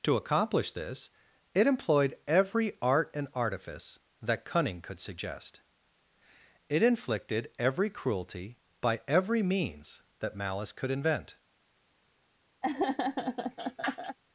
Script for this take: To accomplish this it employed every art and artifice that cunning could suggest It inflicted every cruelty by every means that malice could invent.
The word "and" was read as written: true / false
true